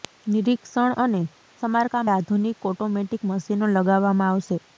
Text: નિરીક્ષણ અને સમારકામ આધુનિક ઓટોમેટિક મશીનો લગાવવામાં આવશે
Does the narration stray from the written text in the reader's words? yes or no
no